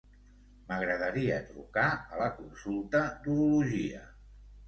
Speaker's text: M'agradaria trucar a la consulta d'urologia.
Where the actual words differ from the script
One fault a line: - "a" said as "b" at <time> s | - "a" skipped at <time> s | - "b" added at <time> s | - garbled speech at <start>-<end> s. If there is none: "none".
none